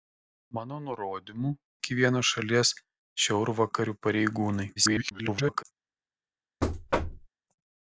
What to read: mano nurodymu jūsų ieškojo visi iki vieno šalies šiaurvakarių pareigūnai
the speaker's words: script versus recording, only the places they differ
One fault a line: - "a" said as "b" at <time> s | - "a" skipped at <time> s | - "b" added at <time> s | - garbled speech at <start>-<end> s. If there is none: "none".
- "jūsų ieškojo visi" skipped at 1.5 s
- garbled speech at 4.8-5.6 s